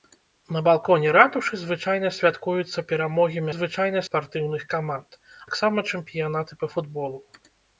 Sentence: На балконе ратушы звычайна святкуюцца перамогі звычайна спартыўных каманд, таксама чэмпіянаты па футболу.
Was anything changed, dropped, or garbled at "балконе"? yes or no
no